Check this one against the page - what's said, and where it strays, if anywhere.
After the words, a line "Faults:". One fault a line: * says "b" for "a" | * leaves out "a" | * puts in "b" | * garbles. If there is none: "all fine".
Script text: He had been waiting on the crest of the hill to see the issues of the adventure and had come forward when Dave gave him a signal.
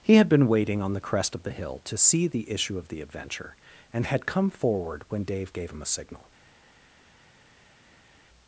He had been waiting on the crest of the hill to see the issue of the adventure and had come forward when Dave gave him a signal.
Faults:
* says "issue" for "issues"